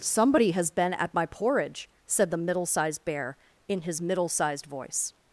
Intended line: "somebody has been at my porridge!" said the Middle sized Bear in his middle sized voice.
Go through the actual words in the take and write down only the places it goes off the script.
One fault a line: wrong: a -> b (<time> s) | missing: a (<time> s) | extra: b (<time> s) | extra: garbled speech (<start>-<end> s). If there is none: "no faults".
no faults